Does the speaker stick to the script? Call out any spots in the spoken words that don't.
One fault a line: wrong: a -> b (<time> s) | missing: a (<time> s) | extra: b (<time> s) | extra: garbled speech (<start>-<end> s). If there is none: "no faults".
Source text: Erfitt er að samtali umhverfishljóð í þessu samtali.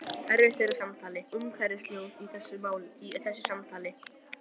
no faults